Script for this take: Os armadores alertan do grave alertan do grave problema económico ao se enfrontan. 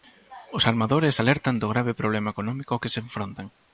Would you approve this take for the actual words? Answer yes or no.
no